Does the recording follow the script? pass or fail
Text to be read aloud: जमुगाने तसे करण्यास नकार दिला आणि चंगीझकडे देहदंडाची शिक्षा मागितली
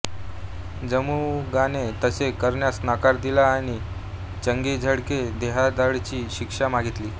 pass